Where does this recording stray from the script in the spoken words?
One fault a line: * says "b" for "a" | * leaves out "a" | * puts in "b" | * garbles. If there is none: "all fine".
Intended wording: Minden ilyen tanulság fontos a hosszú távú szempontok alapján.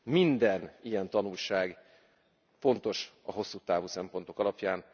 all fine